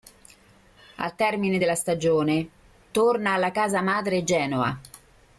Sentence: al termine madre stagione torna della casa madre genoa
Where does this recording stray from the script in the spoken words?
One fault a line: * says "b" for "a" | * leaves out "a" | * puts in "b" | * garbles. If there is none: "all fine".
* says "della" for "madre"
* says "alla" for "della"